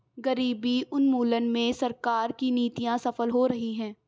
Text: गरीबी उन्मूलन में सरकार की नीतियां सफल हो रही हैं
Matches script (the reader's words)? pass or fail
pass